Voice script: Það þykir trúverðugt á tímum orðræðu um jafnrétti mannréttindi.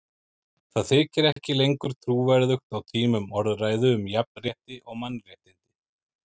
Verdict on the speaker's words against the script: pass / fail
fail